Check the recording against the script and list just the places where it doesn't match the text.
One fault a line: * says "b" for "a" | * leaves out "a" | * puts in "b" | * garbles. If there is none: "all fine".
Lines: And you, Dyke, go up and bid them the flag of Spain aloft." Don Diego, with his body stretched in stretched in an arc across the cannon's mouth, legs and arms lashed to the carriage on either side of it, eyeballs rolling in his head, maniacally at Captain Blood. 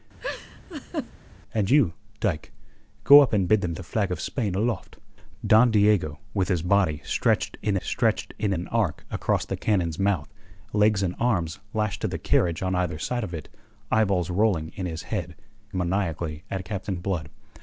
all fine